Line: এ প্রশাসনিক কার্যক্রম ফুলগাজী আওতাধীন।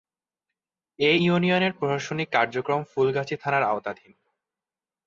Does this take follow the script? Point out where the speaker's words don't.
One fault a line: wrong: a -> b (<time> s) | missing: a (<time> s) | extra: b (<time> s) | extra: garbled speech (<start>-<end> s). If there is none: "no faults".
extra: ইউনিয়নের (1.2 s)
extra: থানার (3.4 s)